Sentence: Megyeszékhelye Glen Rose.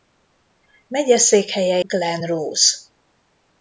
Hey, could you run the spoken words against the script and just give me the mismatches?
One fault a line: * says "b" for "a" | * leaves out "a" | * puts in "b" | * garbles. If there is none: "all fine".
all fine